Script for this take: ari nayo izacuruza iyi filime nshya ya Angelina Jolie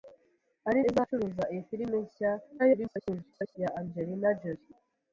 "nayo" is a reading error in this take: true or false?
true